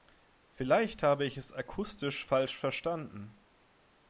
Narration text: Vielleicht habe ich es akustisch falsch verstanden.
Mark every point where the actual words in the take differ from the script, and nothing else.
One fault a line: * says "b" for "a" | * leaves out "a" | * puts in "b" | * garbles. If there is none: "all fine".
all fine